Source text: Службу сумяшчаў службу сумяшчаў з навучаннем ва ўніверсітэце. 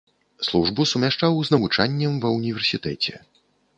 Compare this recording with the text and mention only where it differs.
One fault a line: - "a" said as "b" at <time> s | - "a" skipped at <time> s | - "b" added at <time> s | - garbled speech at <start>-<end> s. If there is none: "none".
- "службу сумяшчаў" skipped at 1.4 s